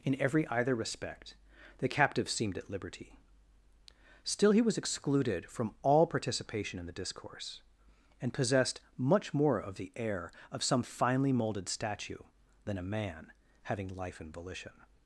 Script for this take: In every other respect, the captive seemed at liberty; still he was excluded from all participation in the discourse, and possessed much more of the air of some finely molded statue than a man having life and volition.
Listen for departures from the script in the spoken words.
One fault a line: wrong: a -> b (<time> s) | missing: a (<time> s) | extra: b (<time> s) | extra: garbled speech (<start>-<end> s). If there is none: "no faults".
wrong: other -> either (0.5 s)